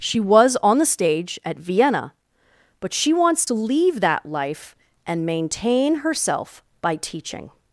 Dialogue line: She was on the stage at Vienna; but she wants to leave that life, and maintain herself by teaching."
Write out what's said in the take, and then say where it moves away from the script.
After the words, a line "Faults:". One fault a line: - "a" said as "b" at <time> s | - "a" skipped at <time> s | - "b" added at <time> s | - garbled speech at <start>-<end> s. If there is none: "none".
She was on the stage at Vienna; but she wants to leave that life, and maintain herself by teaching."
Faults:
none